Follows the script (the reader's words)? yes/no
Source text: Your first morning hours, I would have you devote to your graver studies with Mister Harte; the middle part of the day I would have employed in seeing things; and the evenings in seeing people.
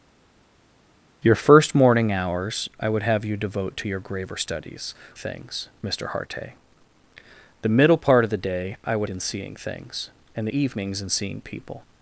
no